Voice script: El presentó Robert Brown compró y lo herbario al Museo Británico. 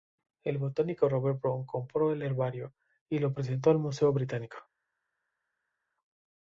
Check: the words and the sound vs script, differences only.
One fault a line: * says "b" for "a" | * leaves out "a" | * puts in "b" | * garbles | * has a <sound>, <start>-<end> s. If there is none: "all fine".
* says "botánico" for "presentó"
* puts in "el herbario"
* says "presentó" for "herbario"